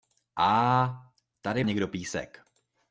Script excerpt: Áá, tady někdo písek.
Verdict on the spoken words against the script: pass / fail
pass